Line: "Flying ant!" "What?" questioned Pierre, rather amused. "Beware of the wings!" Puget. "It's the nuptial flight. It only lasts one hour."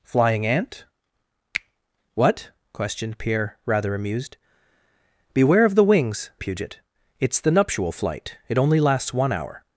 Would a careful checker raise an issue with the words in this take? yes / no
no